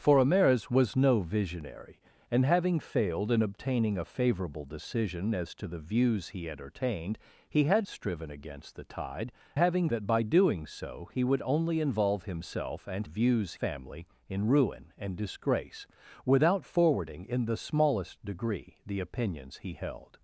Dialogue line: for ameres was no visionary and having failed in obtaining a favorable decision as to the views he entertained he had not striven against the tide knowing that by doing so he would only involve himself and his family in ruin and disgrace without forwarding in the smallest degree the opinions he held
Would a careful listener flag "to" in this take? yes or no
no